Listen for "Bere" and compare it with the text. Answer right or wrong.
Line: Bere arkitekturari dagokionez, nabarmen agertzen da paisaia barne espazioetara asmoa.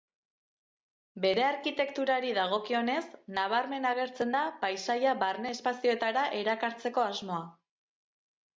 right